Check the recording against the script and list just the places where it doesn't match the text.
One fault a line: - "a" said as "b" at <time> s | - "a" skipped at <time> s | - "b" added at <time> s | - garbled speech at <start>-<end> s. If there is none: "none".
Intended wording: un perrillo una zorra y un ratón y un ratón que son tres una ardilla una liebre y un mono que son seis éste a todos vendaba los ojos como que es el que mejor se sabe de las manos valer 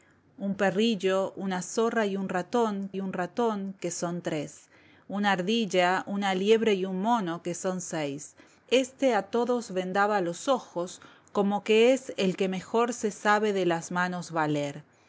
none